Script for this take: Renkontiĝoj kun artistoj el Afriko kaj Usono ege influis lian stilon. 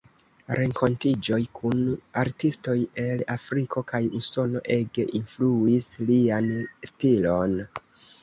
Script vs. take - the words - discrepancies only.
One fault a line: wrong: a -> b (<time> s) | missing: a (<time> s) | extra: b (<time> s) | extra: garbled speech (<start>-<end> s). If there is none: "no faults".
no faults